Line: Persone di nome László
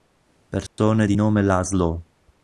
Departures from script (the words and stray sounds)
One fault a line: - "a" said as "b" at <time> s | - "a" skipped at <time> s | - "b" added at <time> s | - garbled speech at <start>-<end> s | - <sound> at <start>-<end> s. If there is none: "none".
- dropout at 0.7-0.8 s